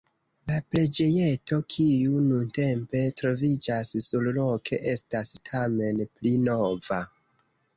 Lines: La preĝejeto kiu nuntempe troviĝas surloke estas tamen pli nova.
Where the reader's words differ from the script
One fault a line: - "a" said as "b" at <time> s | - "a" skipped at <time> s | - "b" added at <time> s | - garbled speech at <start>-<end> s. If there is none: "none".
none